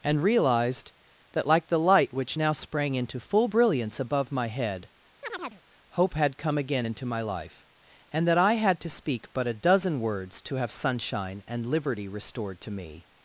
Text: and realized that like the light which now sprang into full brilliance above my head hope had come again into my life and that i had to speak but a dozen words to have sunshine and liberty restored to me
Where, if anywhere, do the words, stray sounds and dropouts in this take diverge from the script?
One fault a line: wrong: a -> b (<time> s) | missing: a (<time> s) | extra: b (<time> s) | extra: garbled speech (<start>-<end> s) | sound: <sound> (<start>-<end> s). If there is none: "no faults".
sound: chirp (5.2-5.6 s)